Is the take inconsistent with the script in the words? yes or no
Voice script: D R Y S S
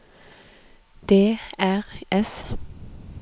yes